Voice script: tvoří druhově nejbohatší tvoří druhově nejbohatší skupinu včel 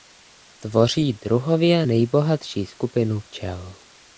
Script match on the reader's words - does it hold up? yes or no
no